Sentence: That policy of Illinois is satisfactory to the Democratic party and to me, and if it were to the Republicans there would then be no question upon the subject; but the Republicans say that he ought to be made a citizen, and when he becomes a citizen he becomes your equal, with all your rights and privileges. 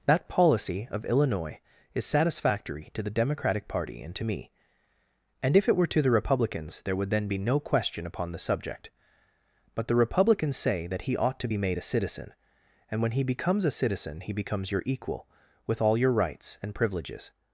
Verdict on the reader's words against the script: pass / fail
pass